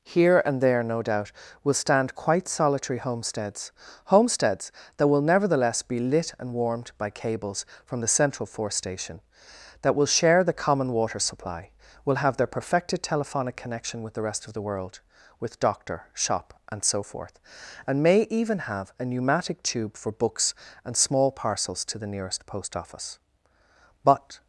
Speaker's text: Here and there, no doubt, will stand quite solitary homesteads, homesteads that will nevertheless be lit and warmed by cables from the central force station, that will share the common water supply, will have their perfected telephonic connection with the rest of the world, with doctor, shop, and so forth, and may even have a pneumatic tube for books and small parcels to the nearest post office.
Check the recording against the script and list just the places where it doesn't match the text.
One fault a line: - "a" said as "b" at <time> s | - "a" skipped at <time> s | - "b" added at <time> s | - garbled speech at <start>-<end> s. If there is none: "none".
- "But" added at 24.0 s